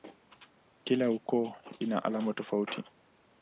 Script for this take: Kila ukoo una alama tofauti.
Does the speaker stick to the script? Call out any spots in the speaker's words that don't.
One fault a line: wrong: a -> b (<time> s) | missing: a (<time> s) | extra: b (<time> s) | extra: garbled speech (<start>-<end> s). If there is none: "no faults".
no faults